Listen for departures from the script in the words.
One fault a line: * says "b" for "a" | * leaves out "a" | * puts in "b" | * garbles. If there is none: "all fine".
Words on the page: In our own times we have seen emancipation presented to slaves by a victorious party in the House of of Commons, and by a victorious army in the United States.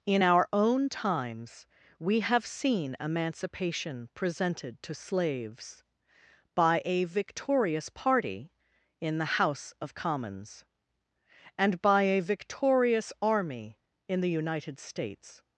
* leaves out "of"